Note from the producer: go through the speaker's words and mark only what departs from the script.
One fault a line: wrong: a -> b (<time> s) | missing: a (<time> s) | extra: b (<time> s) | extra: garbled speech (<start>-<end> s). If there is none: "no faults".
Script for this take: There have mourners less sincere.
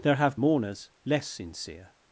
no faults